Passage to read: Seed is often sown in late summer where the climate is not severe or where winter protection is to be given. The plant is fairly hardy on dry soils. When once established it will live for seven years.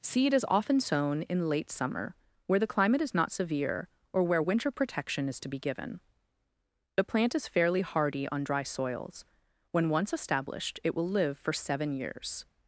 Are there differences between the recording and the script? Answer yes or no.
no